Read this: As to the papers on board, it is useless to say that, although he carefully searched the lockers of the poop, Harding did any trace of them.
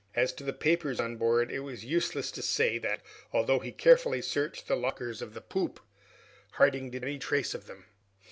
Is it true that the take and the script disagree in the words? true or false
false